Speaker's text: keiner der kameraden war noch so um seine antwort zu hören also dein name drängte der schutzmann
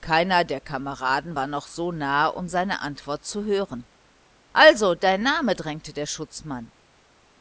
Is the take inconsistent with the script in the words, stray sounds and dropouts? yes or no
yes